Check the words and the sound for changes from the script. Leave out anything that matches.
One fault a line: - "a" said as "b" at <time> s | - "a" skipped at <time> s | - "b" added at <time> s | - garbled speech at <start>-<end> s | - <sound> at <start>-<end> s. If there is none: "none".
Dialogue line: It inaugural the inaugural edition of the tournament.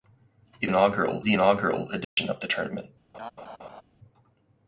- dropout at 2.0-2.2 s
- laugh at 3.1-3.8 s